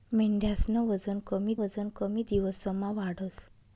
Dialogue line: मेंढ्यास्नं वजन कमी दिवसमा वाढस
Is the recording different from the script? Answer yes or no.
yes